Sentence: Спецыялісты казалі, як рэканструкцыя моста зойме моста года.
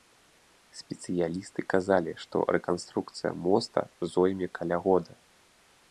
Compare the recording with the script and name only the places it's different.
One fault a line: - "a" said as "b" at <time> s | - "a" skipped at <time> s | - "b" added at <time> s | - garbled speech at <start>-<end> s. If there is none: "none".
- "як" said as "што" at 2.2 s
- "моста" said as "каля" at 4.6 s